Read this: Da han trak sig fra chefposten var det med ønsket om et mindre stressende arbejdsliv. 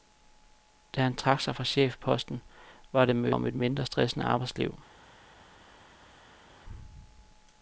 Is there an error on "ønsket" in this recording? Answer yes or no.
yes